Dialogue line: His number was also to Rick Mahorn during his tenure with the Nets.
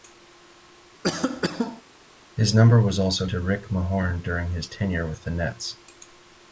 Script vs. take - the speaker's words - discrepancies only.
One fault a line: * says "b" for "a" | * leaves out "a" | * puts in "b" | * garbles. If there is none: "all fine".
all fine